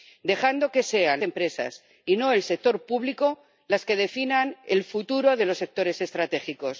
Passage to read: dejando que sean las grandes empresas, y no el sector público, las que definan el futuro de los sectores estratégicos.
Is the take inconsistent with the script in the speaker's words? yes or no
yes